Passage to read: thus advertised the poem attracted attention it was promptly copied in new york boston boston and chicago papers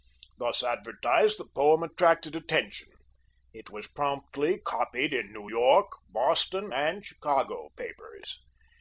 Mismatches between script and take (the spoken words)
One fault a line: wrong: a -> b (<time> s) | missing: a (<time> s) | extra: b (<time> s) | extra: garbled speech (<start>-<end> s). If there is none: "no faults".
missing: boston (6.7 s)